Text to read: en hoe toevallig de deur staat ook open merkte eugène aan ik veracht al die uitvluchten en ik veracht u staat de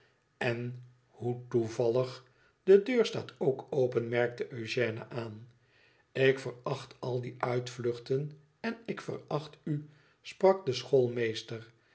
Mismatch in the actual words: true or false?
true